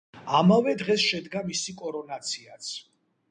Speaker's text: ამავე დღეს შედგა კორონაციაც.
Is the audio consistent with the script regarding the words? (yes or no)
no